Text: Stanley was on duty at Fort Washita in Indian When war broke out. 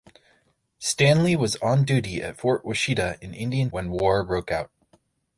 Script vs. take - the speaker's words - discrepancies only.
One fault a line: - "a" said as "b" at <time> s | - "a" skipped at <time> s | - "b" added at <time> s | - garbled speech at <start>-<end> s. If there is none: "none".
none